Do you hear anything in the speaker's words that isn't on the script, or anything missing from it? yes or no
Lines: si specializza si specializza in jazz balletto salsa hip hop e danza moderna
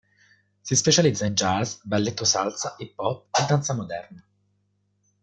yes